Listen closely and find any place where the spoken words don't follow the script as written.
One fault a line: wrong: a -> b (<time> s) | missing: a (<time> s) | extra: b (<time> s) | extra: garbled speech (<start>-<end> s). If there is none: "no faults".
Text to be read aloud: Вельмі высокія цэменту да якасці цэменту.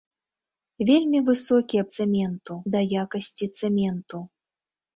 no faults